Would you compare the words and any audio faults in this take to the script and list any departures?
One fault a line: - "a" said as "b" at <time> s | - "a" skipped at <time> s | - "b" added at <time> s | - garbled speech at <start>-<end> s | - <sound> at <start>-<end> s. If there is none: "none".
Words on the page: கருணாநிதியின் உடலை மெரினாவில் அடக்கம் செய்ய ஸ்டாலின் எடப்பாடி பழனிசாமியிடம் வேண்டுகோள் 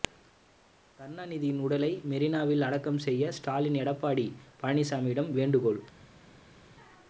none